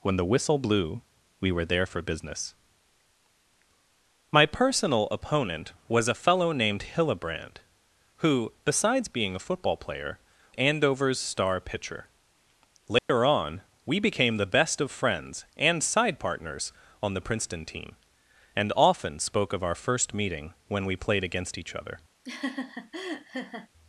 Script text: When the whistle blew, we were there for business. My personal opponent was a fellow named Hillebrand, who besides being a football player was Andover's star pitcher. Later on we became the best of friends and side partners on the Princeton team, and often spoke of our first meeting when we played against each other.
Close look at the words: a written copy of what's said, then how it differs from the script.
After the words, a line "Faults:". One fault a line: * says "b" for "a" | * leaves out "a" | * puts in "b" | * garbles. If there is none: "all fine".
When the whistle blew, we were there for business. My personal opponent was a fellow named Hillebrand, who besides being a football player Andover's star pitcher. Later on we became the best of friends and side partners on the Princeton team, and often spoke of our first meeting when we played against each other.
Faults:
* leaves out "was"